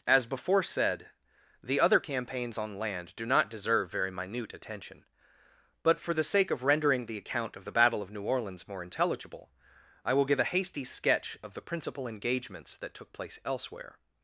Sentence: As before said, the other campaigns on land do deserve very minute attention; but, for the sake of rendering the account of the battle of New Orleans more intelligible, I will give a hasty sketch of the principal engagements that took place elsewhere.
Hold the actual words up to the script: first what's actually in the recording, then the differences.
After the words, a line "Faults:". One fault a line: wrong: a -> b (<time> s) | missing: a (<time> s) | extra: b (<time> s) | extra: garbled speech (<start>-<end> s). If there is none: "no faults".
As before said, the other campaigns on land do not deserve very minute attention; but, for the sake of rendering the account of the battle of New Orleans more intelligible, I will give a hasty sketch of the principal engagements that took place elsewhere.
Faults:
extra: not (3.3 s)